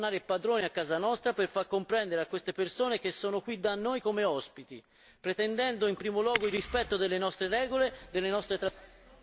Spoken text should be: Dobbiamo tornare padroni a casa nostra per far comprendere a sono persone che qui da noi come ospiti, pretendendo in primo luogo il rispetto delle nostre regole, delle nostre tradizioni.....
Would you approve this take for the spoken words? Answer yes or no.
no